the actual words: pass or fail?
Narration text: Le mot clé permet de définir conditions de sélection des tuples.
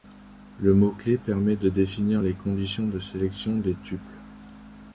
fail